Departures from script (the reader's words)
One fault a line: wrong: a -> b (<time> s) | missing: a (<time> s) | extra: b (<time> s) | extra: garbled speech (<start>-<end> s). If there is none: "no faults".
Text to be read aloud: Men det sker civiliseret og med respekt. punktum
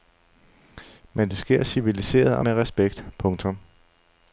no faults